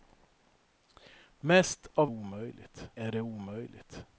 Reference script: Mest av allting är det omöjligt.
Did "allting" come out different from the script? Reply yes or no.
yes